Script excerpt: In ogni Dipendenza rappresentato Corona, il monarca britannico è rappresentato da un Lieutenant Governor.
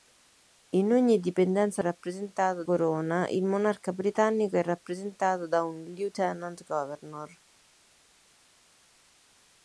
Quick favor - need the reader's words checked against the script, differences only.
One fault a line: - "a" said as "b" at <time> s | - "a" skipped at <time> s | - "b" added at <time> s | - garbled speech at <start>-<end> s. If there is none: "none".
none